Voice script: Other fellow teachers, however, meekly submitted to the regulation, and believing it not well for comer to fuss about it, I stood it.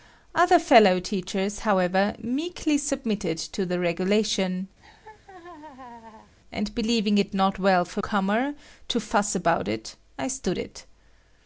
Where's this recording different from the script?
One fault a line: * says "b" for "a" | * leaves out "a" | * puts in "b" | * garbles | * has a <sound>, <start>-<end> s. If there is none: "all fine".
* has a laugh, 4.8-6.3 s